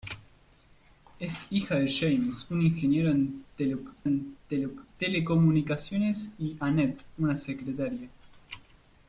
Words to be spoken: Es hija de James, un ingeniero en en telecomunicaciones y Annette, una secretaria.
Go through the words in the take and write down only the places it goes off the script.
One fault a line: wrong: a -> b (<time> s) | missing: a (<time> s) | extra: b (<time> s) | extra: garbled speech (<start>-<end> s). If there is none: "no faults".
no faults